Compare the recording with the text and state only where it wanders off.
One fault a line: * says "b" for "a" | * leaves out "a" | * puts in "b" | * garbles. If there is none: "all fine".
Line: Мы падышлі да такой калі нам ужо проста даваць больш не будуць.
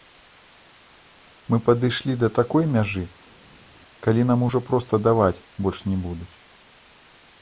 * puts in "мяжы"